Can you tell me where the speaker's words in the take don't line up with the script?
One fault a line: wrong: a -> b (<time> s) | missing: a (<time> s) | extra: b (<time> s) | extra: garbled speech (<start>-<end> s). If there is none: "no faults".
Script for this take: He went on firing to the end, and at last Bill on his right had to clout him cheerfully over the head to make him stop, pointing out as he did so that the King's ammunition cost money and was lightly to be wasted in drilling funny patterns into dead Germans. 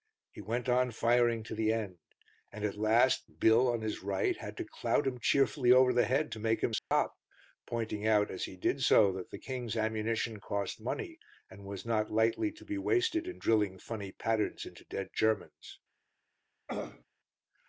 extra: not (11.9 s)